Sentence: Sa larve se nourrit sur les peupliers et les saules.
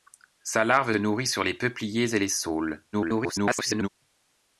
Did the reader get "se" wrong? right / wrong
wrong